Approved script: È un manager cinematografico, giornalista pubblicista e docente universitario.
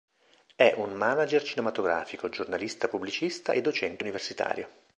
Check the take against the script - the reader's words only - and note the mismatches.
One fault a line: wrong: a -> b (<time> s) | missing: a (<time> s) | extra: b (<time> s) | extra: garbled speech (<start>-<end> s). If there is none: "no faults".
no faults